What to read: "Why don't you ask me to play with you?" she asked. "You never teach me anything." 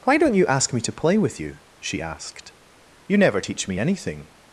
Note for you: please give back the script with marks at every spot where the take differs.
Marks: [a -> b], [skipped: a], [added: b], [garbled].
"Why don't you ask me to play with you?" she asked. "You never teach me anything."